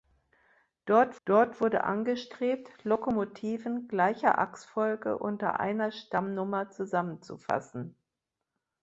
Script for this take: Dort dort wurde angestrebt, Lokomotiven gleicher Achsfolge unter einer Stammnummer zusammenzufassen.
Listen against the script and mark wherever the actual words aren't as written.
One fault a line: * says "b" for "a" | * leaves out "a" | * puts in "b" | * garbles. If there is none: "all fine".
all fine